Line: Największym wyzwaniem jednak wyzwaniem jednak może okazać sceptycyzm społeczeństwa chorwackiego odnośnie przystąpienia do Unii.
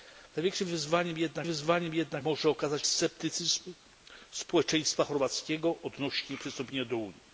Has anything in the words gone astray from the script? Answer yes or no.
no